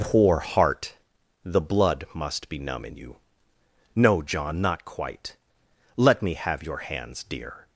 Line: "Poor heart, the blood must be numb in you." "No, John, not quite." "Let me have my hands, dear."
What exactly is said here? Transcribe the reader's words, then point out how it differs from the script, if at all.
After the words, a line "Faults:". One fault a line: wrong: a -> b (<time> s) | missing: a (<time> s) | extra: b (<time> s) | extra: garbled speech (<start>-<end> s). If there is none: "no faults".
"Poor heart, the blood must be numb in you." "No, John, not quite." "Let me have your hands, dear."
Faults:
wrong: my -> your (6.6 s)